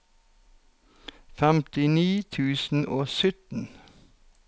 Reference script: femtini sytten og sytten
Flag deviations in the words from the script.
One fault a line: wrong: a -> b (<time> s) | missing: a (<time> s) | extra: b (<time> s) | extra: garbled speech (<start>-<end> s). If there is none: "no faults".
wrong: sytten -> tusen (2.3 s)